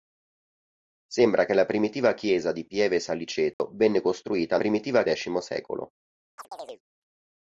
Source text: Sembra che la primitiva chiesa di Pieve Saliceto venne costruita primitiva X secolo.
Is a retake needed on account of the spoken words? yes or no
no